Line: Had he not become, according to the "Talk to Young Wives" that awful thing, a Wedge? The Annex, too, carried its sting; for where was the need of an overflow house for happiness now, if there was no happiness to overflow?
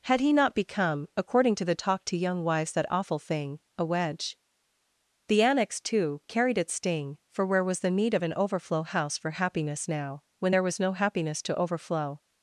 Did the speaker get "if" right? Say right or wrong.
wrong